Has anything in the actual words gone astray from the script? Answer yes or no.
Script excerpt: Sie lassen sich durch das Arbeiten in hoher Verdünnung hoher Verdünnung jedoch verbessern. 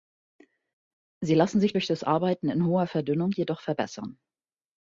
yes